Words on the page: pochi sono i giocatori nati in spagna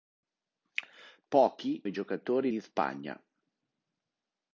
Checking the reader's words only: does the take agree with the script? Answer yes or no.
no